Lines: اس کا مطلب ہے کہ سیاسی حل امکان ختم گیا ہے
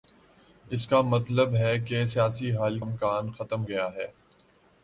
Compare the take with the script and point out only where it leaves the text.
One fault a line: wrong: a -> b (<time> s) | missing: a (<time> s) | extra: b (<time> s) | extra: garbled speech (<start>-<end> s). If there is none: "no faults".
no faults